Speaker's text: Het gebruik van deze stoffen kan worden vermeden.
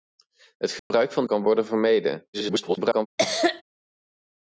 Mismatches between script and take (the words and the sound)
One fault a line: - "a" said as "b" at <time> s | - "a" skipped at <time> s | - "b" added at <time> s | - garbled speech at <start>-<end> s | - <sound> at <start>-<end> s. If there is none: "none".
- dropout at 0.8-0.9 s
- "deze stoffen" skipped at 1.2 s
- garbled speech at 2.3-3.1 s
- cough at 3.2-3.6 s